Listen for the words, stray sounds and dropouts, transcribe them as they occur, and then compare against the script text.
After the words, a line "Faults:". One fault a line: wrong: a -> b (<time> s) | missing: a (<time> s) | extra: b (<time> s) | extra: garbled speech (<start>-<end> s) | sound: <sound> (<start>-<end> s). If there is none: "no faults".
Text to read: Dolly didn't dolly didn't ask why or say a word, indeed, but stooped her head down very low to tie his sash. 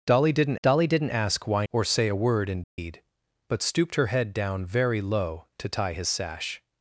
Dolly didn't dolly didn't ask why or say a word, indeed, but stooped her head down very low to tie his sash.
Faults:
sound: dropout (2.6-2.8 s)